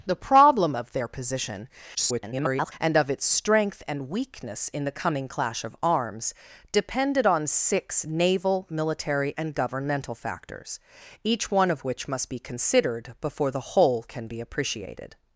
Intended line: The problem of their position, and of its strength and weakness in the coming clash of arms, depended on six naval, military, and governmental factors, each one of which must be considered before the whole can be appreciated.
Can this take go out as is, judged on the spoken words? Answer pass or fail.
fail